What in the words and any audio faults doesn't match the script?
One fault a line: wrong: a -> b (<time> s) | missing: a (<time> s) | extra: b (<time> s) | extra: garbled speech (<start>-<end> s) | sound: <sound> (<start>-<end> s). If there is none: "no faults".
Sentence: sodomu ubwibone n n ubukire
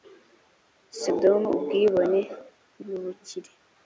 no faults